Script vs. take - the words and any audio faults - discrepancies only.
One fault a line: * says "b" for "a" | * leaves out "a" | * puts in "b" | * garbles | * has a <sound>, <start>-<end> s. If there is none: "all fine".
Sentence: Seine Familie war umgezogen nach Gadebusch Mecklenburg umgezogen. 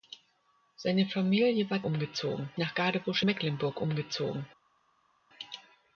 all fine